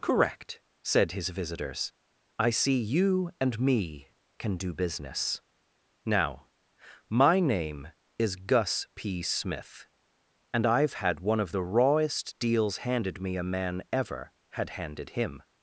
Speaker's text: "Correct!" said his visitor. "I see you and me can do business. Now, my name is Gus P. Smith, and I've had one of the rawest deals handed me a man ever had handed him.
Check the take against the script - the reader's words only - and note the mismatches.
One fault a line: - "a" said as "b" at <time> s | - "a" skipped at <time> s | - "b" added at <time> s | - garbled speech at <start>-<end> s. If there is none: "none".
- "visitor" said as "visitors" at 1.3 s